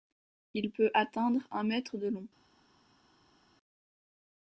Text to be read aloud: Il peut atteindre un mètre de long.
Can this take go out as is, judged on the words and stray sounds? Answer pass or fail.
pass